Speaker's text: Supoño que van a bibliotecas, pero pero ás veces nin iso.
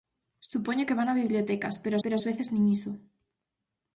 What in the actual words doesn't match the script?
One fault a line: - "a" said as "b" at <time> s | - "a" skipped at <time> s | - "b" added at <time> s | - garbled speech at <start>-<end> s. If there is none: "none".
none